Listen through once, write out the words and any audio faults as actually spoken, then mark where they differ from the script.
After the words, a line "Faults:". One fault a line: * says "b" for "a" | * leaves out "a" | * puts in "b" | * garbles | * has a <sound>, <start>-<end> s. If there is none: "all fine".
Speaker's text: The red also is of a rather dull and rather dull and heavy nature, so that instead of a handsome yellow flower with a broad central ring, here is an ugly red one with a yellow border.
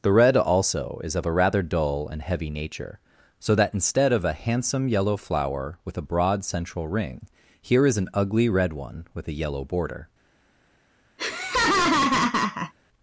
The red also is of a rather dull and heavy nature, so that instead of a handsome yellow flower with a broad central ring, here is an ugly red one with a yellow border.
Faults:
* leaves out "rather dull and"
* has a laugh, 11.2-12.7 s